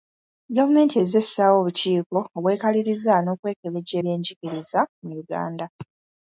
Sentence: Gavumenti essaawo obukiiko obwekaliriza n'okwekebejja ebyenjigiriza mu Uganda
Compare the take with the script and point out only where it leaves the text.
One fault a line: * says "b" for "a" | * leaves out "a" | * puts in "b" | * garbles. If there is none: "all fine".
* puts in "ezze"